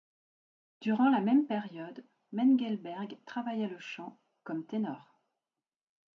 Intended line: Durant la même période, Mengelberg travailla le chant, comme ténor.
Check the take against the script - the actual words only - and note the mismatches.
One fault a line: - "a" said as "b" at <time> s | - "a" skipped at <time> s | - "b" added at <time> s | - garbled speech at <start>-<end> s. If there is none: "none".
none